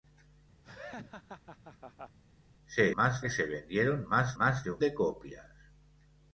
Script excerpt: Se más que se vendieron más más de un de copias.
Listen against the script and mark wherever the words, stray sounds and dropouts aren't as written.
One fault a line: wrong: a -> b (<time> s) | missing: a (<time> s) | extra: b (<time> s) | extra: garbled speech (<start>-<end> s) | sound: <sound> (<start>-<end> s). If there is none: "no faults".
sound: laugh (0.6-2.2 s)